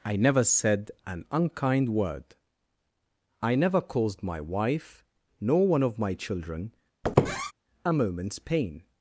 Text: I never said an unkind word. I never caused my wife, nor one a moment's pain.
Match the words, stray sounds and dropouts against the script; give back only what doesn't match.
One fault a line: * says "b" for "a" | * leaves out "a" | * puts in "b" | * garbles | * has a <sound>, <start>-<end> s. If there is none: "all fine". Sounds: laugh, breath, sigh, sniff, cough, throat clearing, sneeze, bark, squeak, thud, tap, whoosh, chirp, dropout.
* puts in "of my children"
* has a squeak, 7.0-7.5 s